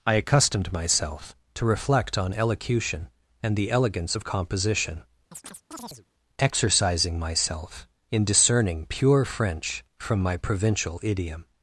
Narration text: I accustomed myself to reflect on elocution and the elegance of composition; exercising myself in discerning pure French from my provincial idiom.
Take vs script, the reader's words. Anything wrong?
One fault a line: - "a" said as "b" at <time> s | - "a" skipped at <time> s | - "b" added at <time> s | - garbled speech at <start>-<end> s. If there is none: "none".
none